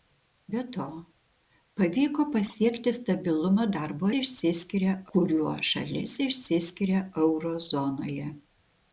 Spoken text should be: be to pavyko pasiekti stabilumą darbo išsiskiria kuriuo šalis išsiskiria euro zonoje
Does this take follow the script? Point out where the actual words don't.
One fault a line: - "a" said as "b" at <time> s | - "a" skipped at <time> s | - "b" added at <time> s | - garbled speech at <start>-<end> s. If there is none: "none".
none